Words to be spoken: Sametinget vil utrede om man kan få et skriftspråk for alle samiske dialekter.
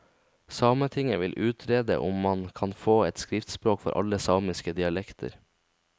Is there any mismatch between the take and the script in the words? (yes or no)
no